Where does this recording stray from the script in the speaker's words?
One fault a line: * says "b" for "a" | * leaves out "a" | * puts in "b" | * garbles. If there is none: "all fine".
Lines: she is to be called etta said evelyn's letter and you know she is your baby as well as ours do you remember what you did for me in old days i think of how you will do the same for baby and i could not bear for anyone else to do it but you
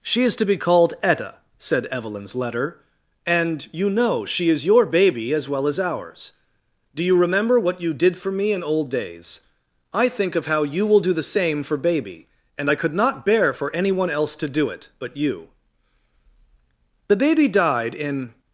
* puts in "the baby died in"